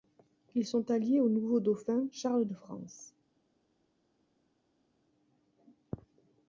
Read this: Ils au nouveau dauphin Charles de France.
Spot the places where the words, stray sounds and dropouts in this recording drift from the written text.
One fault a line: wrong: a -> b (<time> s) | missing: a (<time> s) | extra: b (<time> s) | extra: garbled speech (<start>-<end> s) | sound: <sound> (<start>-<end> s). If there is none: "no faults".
extra: sont alliés (0.7 s)